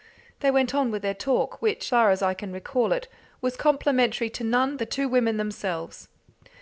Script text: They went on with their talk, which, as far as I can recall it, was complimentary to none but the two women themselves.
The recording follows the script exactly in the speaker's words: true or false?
false